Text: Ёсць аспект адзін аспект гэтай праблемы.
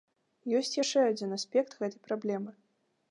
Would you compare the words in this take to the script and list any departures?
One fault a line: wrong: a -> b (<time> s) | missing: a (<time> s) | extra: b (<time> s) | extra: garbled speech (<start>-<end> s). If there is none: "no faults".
wrong: аспект -> яшчэ (0.8 s)